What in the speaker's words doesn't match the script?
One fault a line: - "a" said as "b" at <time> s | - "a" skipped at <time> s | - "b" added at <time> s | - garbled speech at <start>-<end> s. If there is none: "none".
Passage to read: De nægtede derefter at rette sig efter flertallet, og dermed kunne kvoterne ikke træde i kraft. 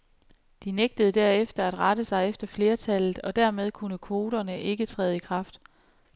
none